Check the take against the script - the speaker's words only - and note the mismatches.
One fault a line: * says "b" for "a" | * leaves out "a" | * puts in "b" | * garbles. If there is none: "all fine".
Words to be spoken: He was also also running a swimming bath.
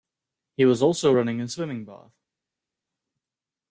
* leaves out "also"